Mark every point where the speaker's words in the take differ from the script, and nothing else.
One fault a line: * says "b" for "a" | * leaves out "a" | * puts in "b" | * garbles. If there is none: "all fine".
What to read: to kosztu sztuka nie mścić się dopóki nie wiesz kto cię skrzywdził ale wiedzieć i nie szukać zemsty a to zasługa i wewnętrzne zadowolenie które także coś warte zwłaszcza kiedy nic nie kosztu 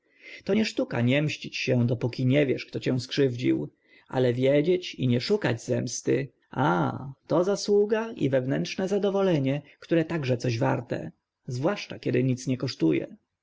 * says "nie" for "kosztu"